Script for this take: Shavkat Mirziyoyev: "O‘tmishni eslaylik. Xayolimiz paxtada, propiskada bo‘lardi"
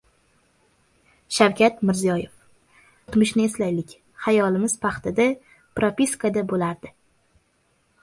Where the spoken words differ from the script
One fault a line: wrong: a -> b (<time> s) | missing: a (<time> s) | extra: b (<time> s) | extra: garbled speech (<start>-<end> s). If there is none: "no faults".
no faults